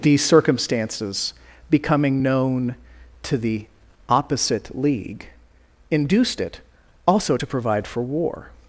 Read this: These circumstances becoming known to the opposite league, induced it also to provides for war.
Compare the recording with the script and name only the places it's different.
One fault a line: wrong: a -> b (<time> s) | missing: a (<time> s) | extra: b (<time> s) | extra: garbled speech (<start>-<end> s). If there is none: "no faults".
wrong: provides -> provide (7.5 s)